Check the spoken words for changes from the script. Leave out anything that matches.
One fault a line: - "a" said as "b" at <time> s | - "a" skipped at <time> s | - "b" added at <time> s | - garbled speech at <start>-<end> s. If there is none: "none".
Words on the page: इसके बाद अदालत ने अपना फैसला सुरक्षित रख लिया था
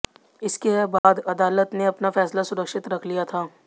none